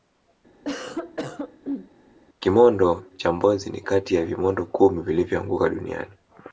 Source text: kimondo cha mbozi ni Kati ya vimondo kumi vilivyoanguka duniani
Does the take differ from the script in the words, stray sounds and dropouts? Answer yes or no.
yes